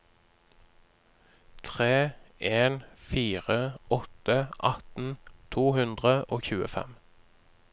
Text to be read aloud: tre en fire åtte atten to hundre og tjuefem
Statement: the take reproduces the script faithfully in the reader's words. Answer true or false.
true